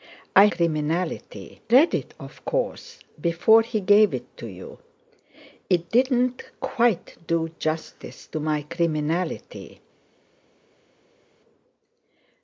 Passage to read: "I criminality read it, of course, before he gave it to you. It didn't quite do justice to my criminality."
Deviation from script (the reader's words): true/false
false